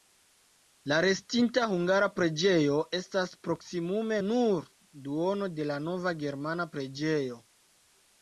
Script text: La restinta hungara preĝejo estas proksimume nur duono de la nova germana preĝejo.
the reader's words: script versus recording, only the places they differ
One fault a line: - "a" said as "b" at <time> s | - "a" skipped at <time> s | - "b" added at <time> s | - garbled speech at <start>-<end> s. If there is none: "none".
none